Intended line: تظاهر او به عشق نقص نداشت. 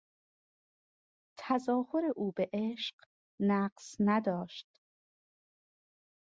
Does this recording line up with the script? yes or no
yes